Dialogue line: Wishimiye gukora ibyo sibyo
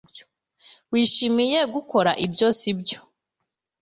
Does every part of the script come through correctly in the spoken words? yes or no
yes